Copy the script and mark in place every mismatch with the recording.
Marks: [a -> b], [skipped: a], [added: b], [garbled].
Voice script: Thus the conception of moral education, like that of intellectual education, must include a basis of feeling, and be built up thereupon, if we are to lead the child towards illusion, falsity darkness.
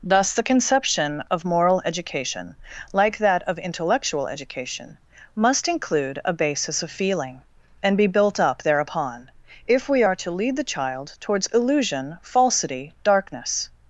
Thus the conception of moral education, like that of intellectual education, must include a basis of feeling, and be built up thereupon, if we are to lead the child towards illusion, falsity darkness.